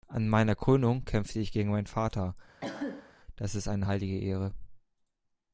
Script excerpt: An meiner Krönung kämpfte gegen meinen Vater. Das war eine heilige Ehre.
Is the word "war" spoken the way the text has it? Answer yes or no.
no